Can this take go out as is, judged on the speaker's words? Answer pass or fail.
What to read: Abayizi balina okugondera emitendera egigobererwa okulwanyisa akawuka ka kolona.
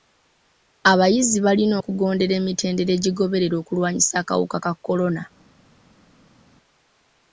pass